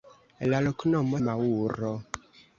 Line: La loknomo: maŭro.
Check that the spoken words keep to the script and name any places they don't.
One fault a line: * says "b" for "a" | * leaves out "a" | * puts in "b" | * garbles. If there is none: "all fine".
all fine